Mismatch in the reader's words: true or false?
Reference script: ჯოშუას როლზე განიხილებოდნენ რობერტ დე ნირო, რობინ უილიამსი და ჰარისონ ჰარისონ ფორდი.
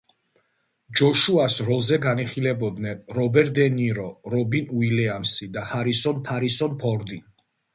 false